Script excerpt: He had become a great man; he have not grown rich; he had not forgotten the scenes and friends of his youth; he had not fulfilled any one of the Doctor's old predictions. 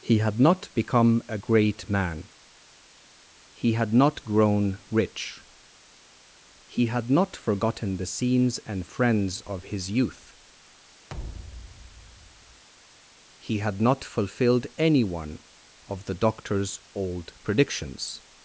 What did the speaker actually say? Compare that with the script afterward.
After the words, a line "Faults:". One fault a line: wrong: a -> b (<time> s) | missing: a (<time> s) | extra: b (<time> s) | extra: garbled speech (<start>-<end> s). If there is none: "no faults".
He had not become a great man; he had not grown rich; he had not forgotten the scenes and friends of his youth; he had not fulfilled any one of the Doctor's old predictions.
Faults:
extra: not (0.4 s)
wrong: have -> had (3.7 s)